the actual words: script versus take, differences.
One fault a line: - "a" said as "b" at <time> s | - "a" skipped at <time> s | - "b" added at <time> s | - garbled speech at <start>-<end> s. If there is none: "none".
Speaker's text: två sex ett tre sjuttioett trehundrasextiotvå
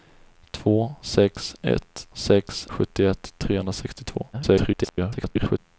- "tre" said as "sex" at 2.1 s
- garbled speech at 4.3-5.6 s